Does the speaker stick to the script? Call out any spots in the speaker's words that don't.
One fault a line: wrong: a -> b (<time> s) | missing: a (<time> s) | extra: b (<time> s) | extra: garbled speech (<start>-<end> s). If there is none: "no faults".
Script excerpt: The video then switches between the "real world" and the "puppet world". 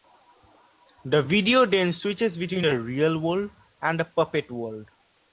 no faults